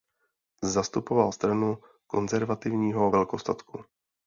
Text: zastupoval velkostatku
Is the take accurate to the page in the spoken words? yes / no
no